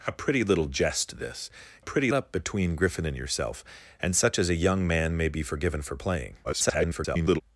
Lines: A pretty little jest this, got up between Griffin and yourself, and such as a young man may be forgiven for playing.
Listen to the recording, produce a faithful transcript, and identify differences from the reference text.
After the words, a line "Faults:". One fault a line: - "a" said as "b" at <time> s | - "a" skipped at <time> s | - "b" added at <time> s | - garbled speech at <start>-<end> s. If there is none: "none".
A pretty little jest this, pretty up between Griffin and yourself, and such as a young man may be forgiven for playing. [garbled]
Faults:
- "got" said as "pretty" at 1.8 s
- garbled speech at 6.4-7.4 s